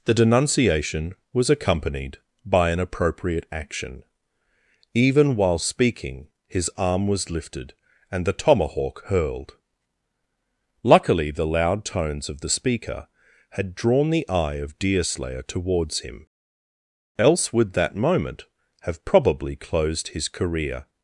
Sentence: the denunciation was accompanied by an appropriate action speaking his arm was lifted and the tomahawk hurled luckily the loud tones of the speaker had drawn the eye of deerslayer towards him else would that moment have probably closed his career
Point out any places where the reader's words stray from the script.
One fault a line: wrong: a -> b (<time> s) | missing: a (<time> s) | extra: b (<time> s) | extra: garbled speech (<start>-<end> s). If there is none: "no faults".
extra: even while (5.0 s)